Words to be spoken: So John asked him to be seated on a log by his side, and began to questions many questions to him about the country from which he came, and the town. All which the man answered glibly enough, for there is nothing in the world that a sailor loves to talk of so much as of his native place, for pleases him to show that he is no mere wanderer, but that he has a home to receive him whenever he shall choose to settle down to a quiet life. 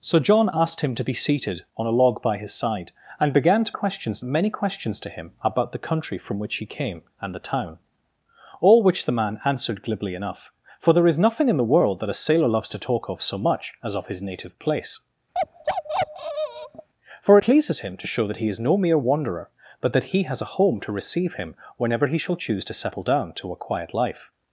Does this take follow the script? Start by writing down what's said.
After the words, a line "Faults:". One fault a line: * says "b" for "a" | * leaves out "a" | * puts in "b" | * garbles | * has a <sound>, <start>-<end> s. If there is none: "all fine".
So John asked him to be seated on a log by his side, and began to questions many questions to him about the country from which he came, and the town. All which the man answered glibly enough, for there is nothing in the world that a sailor loves to talk of so much as of his native place, for pleases him to show that he is no mere wanderer, but that he has a home to receive him whenever he shall choose to settle down to a quiet life.
Faults:
* has a bark, 15.3-16.9 s